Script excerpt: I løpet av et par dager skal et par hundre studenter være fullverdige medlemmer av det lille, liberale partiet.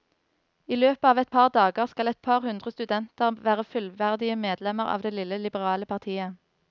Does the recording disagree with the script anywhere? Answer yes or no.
no